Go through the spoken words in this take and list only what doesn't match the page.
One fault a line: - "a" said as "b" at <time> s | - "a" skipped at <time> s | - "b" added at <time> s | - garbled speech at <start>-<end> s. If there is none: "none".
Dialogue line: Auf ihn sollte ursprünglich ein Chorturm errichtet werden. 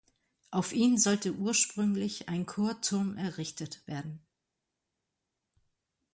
none